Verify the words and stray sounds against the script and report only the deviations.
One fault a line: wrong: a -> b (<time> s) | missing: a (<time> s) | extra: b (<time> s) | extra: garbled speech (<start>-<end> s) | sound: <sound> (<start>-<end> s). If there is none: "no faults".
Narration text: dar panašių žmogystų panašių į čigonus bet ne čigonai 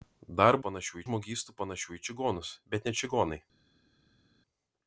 no faults